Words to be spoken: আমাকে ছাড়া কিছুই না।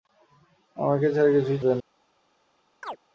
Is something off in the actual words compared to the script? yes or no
no